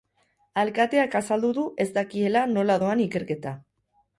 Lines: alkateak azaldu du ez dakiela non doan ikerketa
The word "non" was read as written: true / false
false